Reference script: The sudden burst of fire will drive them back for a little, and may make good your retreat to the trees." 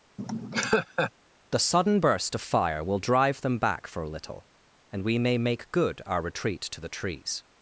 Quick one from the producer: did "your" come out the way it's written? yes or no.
no